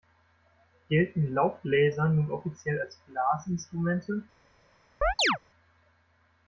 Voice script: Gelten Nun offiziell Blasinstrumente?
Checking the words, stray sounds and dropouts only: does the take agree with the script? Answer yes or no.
no